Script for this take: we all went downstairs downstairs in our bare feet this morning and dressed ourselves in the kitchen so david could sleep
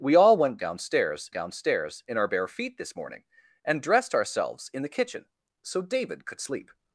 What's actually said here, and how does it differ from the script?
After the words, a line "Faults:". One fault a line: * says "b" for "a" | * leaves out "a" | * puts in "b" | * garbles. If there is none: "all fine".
we all went downstairs downstairs in our bare feet this morning and dressed ourselves in the kitchen so david could sleep
Faults:
all fine